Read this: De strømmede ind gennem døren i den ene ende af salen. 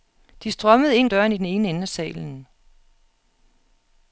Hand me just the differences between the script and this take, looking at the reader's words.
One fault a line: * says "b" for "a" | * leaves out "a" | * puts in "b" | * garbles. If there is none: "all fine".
* leaves out "gennem"